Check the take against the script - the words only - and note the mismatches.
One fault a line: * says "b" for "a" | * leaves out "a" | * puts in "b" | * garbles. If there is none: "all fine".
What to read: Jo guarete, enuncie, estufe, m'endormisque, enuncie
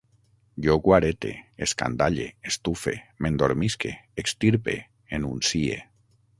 * says "escandalle" for "enuncie"
* puts in "extirpe"